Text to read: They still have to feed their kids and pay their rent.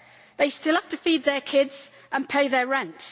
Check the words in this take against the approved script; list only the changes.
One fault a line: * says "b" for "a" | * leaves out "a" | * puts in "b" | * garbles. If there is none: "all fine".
all fine